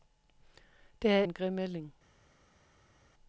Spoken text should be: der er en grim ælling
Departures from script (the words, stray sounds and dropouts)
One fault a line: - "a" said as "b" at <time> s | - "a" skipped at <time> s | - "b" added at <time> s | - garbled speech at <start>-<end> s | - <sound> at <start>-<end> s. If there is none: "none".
none